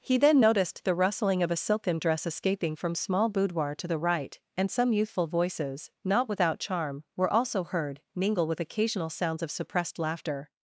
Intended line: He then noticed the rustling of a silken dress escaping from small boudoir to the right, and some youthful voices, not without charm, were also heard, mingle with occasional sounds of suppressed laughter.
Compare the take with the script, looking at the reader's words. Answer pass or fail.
pass